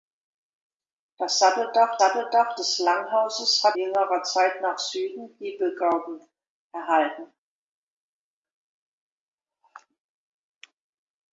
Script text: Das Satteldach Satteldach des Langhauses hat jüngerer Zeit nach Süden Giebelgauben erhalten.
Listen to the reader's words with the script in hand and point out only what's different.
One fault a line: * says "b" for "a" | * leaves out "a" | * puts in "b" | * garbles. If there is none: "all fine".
all fine